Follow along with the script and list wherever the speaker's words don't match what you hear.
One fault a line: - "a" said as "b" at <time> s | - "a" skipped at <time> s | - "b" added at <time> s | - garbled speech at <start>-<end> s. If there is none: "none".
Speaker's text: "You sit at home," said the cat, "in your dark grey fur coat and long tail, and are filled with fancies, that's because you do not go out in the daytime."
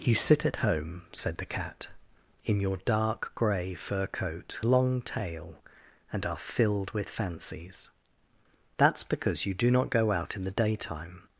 - "and" skipped at 4.6 s